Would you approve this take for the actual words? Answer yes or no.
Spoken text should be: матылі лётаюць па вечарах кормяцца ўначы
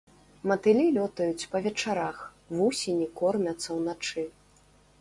no